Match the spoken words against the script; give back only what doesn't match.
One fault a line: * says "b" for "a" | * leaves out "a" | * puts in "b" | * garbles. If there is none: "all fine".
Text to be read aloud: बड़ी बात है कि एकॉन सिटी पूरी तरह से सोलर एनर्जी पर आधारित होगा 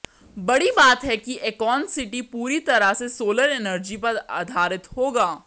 all fine